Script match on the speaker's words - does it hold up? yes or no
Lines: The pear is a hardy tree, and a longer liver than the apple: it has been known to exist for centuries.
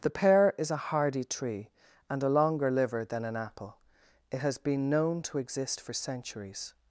no